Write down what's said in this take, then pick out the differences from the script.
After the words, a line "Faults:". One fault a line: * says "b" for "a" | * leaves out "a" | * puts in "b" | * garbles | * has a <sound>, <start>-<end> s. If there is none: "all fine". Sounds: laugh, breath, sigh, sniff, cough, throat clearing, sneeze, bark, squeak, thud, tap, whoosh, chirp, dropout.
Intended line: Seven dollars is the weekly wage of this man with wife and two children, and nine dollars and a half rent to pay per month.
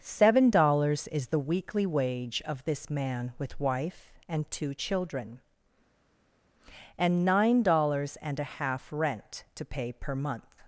Seven dollars is the weekly wage of this man with wife and two children, and nine dollars and a half rent to pay per month.
Faults:
all fine